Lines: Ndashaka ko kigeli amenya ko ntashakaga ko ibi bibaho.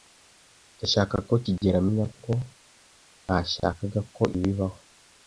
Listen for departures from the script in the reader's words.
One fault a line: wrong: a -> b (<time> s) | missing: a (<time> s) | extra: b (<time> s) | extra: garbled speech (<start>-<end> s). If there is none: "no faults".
missing: ibi (4.2 s)